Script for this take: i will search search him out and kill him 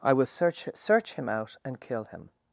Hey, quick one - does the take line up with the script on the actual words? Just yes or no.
yes